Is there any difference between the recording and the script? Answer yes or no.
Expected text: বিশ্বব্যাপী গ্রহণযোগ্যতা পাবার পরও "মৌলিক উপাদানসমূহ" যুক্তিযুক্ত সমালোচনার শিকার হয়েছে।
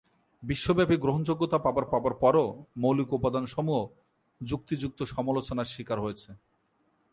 yes